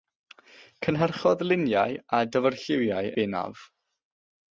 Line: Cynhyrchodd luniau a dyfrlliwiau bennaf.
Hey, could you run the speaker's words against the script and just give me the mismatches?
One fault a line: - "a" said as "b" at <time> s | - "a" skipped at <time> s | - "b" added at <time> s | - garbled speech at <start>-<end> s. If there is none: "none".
none